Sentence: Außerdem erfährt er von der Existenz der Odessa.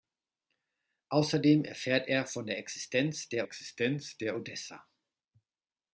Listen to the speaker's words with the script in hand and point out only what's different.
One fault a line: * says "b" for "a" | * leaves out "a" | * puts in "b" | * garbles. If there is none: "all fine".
* puts in "Existenz der"